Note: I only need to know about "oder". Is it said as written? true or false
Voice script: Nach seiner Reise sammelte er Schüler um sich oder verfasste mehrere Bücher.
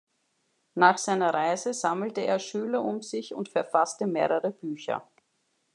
false